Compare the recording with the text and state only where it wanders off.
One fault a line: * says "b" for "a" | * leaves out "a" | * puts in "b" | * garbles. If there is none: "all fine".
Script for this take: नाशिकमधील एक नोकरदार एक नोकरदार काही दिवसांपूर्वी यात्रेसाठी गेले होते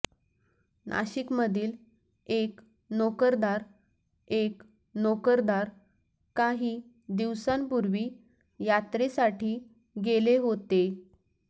all fine